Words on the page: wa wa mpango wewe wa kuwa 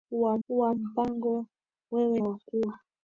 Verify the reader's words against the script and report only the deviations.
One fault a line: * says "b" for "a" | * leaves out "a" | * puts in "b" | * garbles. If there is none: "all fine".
all fine